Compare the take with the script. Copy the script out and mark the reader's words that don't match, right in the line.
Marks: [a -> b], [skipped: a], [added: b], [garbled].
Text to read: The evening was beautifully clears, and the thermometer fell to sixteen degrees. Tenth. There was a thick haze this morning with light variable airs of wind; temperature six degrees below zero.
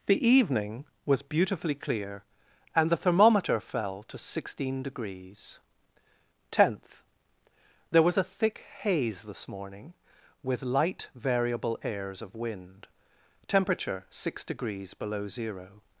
The evening was beautifully [clears, -> clear] and the thermometer fell to sixteen degrees. Tenth. There was a thick haze this morning with light variable airs of wind; temperature six degrees below zero.